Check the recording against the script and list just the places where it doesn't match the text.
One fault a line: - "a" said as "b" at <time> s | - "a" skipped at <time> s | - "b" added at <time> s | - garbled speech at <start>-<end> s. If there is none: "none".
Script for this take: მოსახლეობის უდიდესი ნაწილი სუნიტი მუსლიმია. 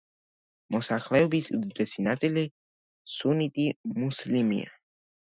none